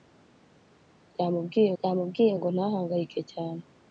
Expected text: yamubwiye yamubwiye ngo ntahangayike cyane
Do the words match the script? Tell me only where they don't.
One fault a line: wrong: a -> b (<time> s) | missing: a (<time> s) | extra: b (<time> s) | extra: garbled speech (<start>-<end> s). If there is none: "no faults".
no faults